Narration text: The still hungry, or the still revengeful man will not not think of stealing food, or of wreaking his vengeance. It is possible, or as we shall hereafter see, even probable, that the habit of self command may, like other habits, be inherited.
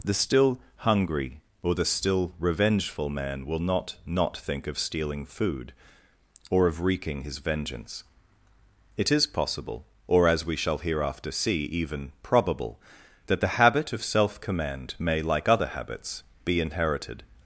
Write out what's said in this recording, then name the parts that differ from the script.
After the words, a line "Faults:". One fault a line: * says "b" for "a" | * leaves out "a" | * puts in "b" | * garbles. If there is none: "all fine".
The still hungry, or the still revengeful man will not not think of stealing food, or of wreaking his vengeance. It is possible, or as we shall hereafter see, even probable, that the habit of self command may, like other habits, be inherited.
Faults:
all fine